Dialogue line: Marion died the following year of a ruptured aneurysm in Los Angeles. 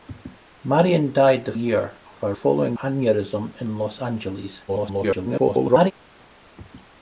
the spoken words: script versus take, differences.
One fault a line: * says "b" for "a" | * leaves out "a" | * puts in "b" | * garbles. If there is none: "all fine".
* leaves out "following"
* says "following" for "ruptured"
* garbles